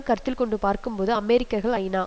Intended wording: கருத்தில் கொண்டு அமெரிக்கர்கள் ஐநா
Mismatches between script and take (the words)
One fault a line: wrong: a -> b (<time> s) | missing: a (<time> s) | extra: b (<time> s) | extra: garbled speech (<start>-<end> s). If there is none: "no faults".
extra: பார்க்கும்போது (0.6 s)